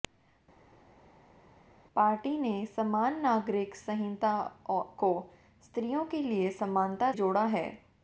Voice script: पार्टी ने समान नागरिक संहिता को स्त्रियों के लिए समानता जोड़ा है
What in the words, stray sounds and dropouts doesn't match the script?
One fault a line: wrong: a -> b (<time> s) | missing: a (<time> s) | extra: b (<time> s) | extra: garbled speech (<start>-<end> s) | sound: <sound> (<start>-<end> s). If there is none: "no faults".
no faults